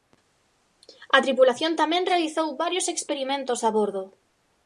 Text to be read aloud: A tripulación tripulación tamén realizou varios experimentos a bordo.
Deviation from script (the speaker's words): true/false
true